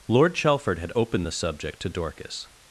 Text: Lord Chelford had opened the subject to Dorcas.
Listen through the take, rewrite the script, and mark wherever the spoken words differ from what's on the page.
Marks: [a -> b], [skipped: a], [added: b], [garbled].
Lord Chelford had opened the subject to Dorcas.